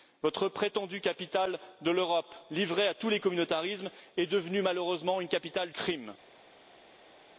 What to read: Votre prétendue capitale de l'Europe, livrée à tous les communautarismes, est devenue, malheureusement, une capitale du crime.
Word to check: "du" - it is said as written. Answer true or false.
false